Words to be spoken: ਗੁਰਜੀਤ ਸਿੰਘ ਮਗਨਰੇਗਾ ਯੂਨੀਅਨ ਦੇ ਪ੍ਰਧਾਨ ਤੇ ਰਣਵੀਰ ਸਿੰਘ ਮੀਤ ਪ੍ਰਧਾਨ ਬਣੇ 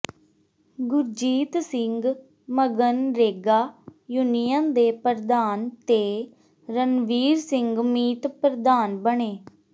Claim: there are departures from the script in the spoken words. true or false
false